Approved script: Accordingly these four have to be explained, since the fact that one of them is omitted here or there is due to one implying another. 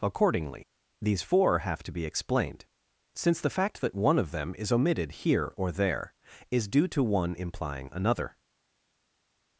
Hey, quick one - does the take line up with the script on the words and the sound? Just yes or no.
yes